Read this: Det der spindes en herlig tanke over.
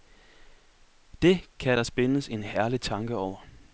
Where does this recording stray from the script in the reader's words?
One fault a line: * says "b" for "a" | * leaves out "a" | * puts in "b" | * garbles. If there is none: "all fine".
* puts in "kan"